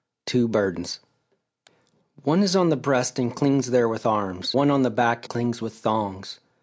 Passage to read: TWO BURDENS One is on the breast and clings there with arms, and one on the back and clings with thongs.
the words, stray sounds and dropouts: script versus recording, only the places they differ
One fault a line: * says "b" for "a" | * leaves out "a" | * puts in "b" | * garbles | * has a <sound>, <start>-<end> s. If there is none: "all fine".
* leaves out "and"
* leaves out "and"